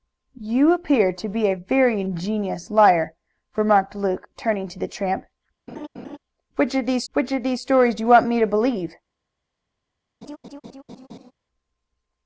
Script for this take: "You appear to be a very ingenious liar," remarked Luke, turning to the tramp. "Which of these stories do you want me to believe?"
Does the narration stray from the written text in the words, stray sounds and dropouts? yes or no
yes